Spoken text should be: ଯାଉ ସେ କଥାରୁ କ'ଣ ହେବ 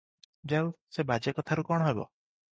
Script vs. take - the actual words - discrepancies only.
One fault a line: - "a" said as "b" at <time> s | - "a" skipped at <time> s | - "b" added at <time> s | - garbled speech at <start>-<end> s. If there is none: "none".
- "ବାଜେ" added at 1.1 s